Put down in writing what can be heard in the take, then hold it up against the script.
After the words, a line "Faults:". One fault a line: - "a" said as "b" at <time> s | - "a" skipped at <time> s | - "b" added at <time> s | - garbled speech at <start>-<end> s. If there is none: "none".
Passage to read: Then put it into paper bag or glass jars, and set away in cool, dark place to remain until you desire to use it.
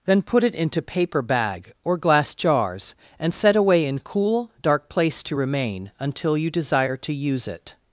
Then put it into paper bag or glass jars, and set away in cool, dark place to remain until you desire to use it.
Faults:
none